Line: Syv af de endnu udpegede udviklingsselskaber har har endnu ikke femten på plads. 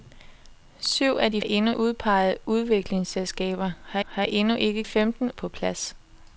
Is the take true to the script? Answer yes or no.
yes